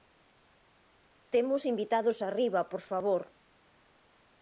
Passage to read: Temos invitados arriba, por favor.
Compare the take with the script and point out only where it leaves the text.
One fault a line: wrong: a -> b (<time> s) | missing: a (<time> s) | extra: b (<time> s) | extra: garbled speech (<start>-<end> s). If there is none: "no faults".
no faults